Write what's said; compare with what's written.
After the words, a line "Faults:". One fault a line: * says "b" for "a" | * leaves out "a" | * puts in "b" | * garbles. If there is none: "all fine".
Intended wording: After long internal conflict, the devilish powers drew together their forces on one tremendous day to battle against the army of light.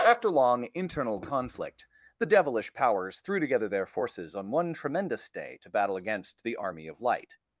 After long internal conflict, the devilish powers threw together their forces on one tremendous day to battle against the army of light.
Faults:
* says "threw" for "drew"